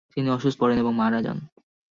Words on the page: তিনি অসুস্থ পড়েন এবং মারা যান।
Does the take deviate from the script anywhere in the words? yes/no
no